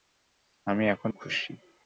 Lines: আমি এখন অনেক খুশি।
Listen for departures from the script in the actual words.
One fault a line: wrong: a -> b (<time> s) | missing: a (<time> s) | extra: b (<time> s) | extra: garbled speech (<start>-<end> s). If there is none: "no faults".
missing: অনেক (1.1 s)